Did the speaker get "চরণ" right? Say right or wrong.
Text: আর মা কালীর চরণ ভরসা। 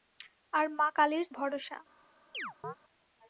wrong